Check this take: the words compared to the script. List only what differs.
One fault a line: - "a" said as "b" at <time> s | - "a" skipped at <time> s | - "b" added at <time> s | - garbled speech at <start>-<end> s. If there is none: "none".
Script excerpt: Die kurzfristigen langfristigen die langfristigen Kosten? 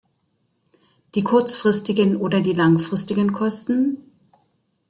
- "langfristigen" said as "oder" at 2.2 s